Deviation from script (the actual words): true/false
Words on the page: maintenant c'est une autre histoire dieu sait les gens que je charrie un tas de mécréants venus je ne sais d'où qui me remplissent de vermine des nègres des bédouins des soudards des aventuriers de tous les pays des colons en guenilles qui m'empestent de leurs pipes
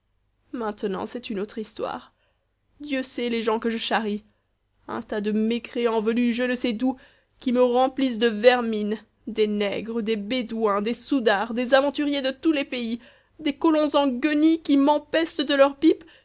false